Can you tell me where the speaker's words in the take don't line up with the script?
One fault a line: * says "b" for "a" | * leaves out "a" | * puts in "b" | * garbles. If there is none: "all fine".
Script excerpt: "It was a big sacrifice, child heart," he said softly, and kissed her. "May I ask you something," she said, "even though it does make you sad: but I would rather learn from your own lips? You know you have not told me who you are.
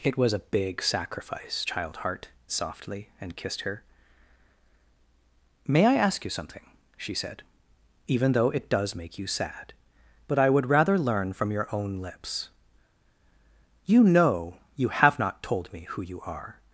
* leaves out "he said"